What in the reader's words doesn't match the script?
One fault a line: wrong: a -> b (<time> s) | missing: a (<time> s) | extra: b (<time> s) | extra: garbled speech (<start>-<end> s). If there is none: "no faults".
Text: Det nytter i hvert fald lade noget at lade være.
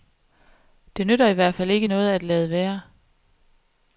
wrong: lade -> ikke (1.7 s)